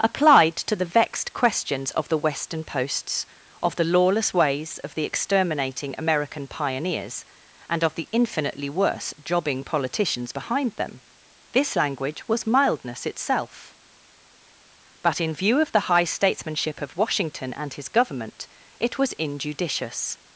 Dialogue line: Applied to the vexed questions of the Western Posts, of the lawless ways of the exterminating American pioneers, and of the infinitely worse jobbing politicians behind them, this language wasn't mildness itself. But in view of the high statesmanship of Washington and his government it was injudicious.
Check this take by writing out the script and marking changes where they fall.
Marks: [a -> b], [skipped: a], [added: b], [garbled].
Applied to the vexed questions of the Western Posts, of the lawless ways of the exterminating American pioneers, and of the infinitely worse jobbing politicians behind them, this language [wasn't -> was] mildness itself. But in view of the high statesmanship of Washington and his government it was injudicious.